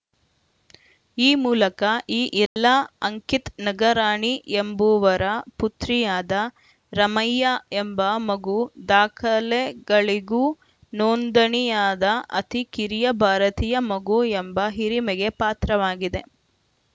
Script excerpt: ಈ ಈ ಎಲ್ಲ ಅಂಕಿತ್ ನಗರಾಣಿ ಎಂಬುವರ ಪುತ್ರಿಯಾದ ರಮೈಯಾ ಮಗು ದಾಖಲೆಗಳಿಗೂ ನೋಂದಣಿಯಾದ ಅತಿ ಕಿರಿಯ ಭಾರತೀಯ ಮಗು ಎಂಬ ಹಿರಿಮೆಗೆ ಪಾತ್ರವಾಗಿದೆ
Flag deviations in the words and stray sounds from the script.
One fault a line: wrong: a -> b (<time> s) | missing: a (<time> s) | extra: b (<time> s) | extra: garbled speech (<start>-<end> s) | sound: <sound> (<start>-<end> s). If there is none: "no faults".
extra: ಮೂಲಕ (1.4 s)
sound: dropout (2.5-2.6 s)
extra: ಎಂಬ (7.8 s)